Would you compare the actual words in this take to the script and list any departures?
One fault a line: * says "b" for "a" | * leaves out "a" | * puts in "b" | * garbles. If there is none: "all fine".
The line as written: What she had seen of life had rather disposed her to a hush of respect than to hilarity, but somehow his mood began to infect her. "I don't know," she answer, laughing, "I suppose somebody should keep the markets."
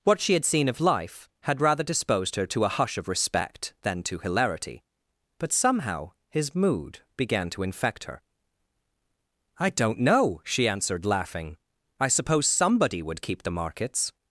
* says "answered" for "answer"
* says "would" for "should"